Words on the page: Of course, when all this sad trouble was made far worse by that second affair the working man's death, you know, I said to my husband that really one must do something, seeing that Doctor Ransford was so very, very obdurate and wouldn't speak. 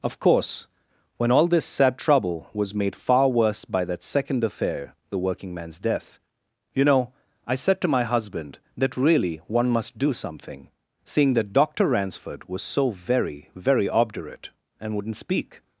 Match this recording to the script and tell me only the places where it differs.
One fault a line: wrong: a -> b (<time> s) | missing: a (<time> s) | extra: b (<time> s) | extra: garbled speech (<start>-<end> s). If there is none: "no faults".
no faults